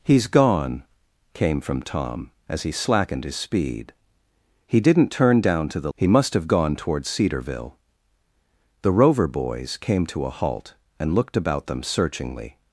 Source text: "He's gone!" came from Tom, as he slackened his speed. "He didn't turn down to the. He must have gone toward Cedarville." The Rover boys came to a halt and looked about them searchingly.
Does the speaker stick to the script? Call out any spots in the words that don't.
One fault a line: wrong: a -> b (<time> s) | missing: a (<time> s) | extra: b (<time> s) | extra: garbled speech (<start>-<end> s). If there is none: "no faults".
no faults